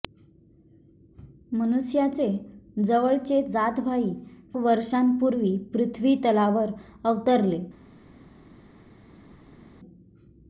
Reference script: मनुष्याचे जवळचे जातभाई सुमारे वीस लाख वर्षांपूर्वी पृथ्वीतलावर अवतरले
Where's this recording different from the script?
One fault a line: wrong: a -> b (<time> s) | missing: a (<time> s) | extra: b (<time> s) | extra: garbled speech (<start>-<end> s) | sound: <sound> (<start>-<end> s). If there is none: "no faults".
missing: सुमारे वीस लाख (4.1 s)